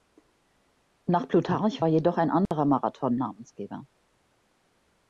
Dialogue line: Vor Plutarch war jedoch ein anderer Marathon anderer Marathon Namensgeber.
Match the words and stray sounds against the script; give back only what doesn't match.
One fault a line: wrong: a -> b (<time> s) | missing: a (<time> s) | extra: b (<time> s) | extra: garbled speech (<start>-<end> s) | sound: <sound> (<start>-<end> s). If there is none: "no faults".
wrong: Vor -> Nach (1.1 s)
sound: dropout (2.5-2.5 s)
missing: anderer Marathon (3.2 s)